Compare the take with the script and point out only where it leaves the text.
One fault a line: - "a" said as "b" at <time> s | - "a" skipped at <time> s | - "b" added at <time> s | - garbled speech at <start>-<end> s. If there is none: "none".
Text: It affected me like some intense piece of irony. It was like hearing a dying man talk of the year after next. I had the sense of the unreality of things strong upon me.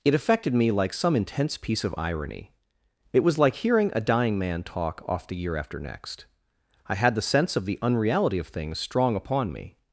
- "of" said as "off" at 5.1 s